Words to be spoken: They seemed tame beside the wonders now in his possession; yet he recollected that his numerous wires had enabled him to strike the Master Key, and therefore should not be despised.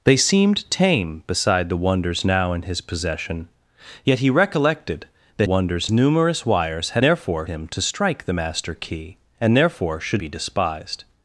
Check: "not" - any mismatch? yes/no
yes